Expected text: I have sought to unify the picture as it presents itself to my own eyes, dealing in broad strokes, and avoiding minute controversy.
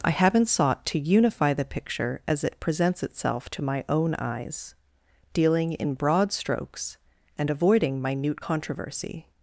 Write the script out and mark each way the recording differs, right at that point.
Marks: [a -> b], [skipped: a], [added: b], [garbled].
I [have -> haven't] sought to unify the picture as it presents itself to my own eyes, dealing in broad strokes, and avoiding minute controversy.